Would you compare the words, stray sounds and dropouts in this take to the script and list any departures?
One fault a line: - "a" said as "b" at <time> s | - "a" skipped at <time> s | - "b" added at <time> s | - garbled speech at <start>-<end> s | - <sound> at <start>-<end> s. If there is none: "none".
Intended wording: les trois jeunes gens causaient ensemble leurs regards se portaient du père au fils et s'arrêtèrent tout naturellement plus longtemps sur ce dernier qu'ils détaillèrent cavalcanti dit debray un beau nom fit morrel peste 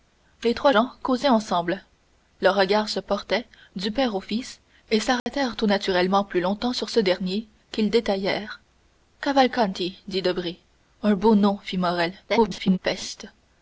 - "jeunes" skipped at 0.7 s
- dropout at 5.2-5.3 s
- garbled speech at 12.3-12.8 s